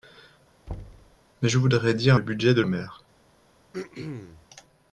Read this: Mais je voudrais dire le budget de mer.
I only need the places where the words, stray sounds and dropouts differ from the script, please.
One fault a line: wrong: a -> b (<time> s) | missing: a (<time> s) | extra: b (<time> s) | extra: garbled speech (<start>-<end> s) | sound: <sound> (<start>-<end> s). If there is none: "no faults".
sound: thud (0.7-1.2 s)
sound: throat clearing (3.7-4.5 s)